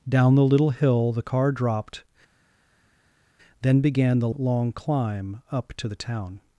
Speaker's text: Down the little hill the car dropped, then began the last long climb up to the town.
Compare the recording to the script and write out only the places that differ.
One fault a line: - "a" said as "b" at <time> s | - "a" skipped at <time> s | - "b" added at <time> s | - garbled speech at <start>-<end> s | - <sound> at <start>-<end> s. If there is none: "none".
- "last" skipped at 4.3 s